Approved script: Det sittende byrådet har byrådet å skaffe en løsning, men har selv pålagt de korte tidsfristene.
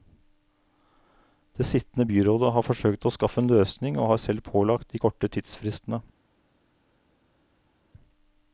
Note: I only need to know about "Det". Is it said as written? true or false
true